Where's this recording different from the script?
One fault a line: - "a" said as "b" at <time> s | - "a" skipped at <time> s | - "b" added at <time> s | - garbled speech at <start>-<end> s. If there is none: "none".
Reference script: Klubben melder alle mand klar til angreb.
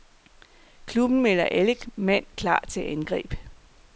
none